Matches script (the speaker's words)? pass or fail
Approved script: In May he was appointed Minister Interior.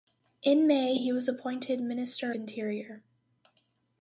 pass